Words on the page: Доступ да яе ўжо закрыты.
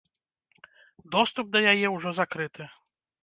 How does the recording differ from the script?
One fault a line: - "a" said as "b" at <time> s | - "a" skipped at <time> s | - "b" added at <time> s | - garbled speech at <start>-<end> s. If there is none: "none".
none